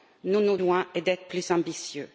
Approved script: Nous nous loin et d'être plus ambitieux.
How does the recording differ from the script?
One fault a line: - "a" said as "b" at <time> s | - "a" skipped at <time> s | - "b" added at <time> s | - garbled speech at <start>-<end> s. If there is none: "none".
none